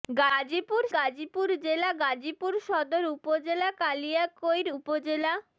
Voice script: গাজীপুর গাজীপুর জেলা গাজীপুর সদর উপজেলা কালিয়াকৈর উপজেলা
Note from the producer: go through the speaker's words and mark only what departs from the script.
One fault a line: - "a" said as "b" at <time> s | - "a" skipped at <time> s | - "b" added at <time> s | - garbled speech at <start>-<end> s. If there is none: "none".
none